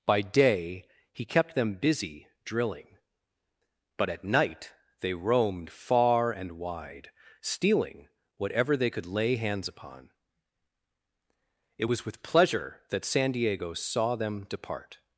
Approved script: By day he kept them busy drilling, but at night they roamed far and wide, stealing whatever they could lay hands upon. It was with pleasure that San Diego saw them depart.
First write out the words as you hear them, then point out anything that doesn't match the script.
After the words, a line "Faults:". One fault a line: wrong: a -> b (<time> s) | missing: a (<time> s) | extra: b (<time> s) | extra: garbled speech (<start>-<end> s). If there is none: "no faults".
By day he kept them busy drilling, but at night they roamed far and wide, stealing whatever they could lay hands upon. It was with pleasure that San Diego saw them depart.
Faults:
no faults